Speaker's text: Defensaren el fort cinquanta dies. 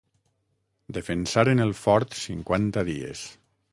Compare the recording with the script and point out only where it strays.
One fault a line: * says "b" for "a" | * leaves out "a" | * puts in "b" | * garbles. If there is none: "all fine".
all fine